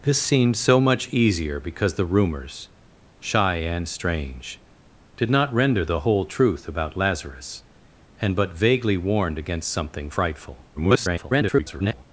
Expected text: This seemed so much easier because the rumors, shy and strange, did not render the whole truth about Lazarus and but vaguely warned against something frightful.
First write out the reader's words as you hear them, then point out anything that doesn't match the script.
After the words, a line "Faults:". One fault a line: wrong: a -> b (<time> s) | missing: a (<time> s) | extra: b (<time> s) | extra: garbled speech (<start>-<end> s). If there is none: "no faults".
This seemed so much easier because the rumors, shy and strange, did not render the whole truth about Lazarus and but vaguely warned against something frightful. [garbled]
Faults:
extra: garbled speech (10.8-12.1 s)